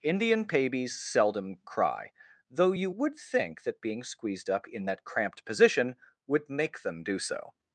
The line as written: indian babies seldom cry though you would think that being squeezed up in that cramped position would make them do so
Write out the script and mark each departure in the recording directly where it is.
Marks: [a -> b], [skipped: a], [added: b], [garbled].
indian babies seldom cry though you would think that being squeezed up in that cramped position would make them do so